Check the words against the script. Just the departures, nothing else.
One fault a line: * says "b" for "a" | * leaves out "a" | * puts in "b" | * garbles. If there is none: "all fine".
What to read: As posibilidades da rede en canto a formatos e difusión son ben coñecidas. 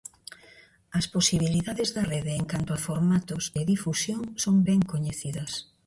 all fine